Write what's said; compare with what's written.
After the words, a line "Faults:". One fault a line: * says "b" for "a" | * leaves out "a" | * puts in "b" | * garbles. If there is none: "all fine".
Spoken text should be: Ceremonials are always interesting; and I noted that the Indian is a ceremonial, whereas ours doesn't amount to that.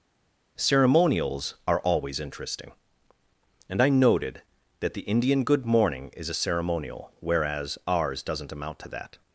Ceremonials are always interesting; and I noted that the Indian good morning is a ceremonial, whereas ours doesn't amount to that.
Faults:
* puts in "good morning"